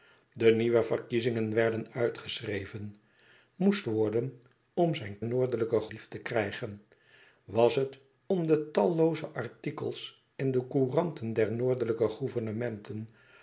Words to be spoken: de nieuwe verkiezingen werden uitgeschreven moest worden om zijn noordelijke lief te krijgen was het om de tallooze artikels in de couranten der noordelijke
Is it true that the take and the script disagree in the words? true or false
false